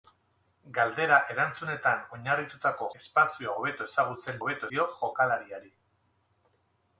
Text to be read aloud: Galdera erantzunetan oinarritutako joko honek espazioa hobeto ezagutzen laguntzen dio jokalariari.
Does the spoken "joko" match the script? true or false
false